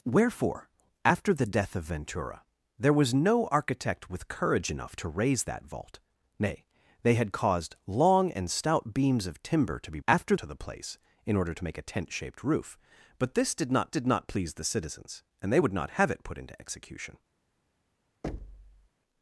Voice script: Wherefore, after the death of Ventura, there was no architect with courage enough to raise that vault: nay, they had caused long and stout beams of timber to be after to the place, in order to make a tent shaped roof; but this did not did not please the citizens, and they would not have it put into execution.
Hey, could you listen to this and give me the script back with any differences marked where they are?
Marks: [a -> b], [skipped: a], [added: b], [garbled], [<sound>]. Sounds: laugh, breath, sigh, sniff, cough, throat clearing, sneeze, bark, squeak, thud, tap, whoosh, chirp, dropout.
Wherefore, after the death of Ventura, there was no architect with courage enough to raise that vault: nay, they had caused long and stout beams of timber to be after to the place, in order to make a tent shaped roof; but this did not did not please the citizens, and they would not have it put into execution. [thud]